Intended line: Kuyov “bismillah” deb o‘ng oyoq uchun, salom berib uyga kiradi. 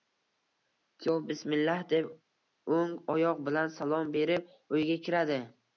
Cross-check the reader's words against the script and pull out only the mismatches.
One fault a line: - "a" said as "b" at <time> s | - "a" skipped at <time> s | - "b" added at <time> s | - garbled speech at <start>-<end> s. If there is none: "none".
- "uchun" said as "bilan" at 3.5 s